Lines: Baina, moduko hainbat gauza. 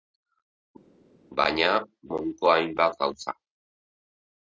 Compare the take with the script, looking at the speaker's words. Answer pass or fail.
pass